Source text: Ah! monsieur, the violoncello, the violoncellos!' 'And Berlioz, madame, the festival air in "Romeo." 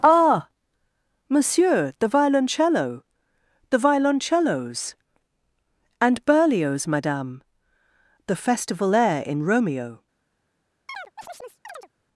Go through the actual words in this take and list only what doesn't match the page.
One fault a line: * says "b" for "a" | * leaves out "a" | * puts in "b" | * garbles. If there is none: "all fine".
all fine